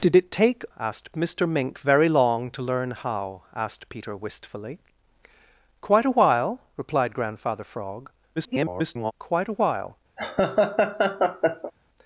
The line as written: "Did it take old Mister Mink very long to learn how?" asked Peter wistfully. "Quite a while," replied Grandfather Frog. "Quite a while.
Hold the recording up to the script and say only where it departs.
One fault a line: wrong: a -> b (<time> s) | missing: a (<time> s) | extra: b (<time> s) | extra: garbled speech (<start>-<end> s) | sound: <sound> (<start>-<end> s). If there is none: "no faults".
wrong: old -> asked (0.8 s)
extra: garbled speech (8.4-9.1 s)
sound: laugh (10.2-11.7 s)